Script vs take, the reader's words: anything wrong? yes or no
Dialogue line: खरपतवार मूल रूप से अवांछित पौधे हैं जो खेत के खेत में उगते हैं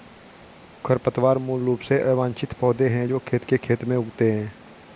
no